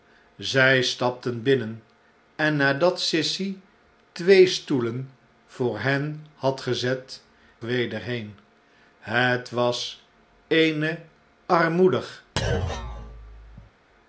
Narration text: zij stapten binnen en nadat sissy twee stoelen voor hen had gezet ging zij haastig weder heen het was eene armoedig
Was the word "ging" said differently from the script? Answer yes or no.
yes